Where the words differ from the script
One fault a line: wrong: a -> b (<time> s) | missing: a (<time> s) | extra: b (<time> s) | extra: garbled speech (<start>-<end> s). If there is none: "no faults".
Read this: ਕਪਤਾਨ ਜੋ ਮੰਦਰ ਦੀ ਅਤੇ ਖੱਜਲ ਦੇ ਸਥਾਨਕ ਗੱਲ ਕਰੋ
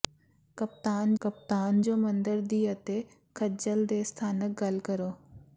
extra: ਕਪਤਾਨ (1.2 s)